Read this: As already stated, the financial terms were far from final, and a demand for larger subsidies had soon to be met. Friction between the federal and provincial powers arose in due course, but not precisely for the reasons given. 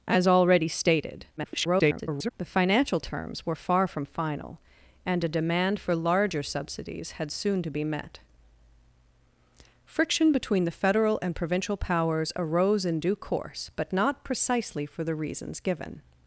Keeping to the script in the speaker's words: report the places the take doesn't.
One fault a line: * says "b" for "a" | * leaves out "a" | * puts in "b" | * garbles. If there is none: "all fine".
* garbles